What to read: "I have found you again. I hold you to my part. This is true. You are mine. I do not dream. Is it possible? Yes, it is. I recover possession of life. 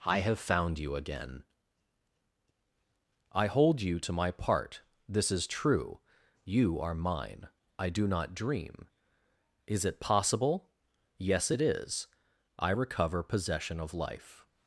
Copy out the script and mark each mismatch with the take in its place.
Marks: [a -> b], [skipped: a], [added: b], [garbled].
"I have found you again. I hold you to my part. This is true. You are mine. I do not dream. Is it possible? Yes, it is. I recover possession of life.